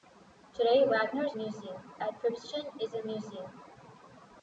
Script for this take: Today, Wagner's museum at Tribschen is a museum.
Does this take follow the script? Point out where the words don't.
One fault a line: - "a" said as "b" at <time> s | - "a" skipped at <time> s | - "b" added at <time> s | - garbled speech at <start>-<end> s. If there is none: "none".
none